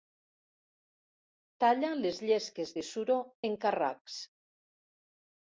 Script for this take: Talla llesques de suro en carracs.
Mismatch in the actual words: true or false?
true